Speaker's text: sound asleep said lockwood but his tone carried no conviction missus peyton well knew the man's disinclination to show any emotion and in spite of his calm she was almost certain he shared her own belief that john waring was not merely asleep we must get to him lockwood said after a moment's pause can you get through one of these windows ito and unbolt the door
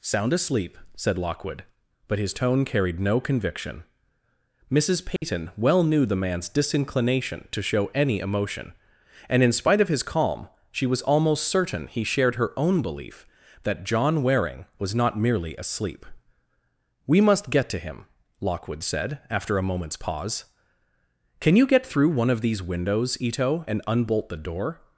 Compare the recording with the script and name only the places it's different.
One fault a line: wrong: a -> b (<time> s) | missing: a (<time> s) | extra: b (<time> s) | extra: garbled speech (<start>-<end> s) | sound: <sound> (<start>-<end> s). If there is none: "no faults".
sound: dropout (5.2-5.2 s)